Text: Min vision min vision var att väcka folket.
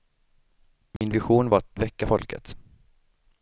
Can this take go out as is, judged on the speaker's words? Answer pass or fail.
fail